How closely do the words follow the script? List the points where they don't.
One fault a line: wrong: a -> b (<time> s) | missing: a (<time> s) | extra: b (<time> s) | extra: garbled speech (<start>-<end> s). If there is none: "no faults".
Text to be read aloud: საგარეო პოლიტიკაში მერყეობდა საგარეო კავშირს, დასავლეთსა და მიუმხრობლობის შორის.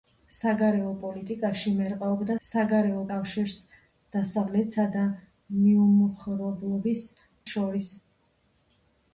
no faults